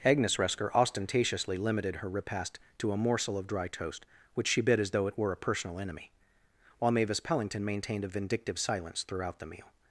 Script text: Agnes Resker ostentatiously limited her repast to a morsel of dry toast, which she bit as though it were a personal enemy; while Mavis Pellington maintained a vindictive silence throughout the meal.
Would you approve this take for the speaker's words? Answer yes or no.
yes